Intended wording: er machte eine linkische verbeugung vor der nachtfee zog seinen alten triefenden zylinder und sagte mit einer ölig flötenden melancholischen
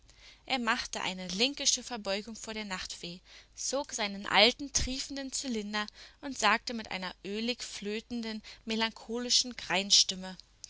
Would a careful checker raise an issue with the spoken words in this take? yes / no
no